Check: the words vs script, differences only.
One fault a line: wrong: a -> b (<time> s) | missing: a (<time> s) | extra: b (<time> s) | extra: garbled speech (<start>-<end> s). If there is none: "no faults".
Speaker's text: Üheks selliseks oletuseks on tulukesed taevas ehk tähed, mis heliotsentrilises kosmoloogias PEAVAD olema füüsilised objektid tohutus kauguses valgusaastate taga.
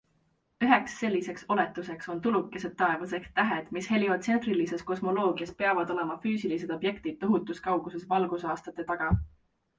no faults